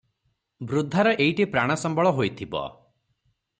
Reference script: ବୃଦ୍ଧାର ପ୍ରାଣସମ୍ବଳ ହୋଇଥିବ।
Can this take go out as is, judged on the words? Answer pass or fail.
fail